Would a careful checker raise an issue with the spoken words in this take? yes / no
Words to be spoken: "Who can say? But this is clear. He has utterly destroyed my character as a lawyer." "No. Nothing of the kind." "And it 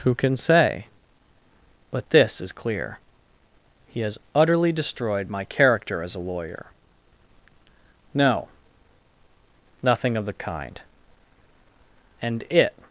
no